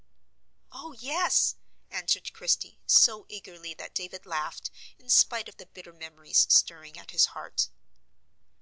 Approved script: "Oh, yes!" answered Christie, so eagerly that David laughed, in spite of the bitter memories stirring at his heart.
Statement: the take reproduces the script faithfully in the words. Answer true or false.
true